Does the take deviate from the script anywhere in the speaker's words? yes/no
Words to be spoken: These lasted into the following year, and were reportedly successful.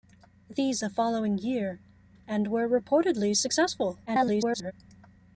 yes